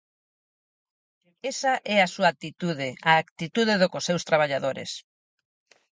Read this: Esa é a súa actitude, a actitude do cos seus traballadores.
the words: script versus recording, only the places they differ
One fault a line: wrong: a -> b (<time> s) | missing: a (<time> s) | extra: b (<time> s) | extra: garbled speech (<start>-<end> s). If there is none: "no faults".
no faults